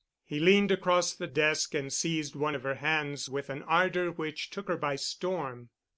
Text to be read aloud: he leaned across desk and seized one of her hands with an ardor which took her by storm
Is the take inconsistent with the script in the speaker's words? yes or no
yes